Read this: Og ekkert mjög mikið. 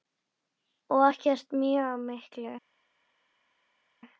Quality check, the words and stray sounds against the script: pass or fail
pass